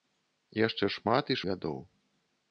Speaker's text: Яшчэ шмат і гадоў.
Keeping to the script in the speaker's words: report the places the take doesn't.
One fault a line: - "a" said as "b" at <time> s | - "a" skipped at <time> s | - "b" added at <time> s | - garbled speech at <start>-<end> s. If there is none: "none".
none